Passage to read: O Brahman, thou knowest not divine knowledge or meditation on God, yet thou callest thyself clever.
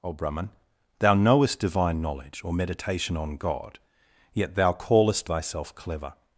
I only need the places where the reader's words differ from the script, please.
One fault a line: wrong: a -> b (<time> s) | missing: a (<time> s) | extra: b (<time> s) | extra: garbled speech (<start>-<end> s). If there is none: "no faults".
missing: not (1.6 s)